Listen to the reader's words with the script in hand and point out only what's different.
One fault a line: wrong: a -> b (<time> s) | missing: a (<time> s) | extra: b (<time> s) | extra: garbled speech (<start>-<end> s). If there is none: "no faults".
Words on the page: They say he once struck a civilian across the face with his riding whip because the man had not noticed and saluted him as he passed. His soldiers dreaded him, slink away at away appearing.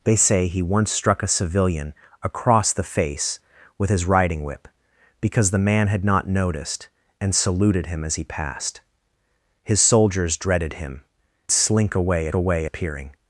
no faults